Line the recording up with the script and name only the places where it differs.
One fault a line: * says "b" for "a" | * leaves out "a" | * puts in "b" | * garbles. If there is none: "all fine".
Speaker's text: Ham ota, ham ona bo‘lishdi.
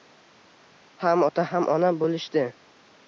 all fine